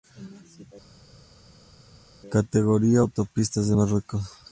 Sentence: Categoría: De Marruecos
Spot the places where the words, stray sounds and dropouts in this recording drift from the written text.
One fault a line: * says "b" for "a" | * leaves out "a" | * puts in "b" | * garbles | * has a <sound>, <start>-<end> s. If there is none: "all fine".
* puts in "Autopistas"